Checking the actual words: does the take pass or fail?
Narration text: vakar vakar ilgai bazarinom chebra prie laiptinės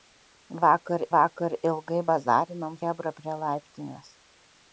pass